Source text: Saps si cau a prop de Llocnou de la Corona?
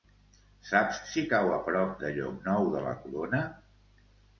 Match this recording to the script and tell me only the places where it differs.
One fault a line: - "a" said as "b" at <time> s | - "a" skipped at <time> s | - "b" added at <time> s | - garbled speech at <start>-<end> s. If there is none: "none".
none